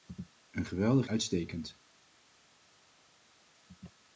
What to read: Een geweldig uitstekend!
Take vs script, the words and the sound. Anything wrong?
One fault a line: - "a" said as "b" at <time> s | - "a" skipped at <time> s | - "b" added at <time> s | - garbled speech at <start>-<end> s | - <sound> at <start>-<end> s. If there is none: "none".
none